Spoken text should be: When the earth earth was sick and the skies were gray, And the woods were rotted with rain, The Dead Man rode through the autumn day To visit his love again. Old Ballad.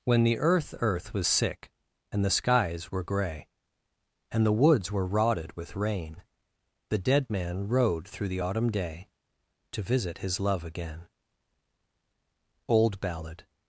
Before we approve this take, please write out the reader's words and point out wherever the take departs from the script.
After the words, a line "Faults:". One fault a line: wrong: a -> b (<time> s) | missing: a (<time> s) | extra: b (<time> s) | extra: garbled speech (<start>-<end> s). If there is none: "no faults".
When the earth earth was sick and the skies were gray, And the woods were rotted with rain, The Dead Man rode through the autumn day To visit his love again. Old Ballad.
Faults:
no faults